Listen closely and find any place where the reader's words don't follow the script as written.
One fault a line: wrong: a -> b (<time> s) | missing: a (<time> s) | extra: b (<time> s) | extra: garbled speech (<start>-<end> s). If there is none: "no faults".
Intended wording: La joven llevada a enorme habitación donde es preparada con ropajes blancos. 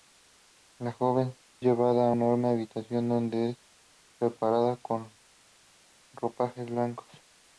no faults